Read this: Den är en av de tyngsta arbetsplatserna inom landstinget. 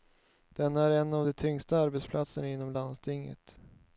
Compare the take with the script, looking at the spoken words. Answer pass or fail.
pass